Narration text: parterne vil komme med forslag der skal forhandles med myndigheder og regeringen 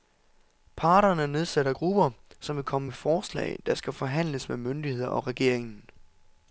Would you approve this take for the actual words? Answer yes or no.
no